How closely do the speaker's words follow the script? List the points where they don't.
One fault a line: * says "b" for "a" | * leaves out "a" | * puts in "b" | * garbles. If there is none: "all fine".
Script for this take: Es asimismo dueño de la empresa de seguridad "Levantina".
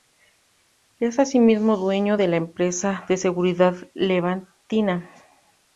all fine